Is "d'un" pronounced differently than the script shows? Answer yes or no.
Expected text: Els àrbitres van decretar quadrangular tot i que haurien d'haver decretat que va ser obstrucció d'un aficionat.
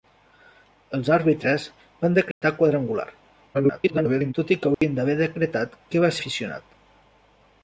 yes